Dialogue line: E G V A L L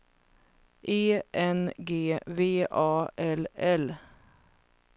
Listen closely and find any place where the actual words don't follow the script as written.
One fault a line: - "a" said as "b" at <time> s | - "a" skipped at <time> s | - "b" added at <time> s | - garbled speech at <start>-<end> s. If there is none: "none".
- "N" added at 1.3 s